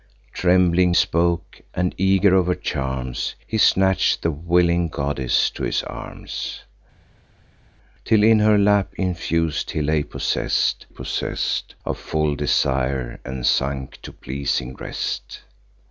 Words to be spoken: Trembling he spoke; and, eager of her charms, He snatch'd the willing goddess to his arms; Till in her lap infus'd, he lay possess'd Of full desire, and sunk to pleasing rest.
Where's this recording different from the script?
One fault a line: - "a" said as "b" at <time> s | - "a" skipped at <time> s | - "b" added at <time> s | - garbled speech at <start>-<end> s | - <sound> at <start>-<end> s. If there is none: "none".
- "he" skipped at 0.9 s
- "possess'd" added at 10.9 s